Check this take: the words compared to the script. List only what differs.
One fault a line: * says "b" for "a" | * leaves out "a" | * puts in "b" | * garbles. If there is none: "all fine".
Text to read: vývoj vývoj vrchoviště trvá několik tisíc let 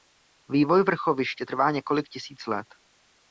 * leaves out "vývoj"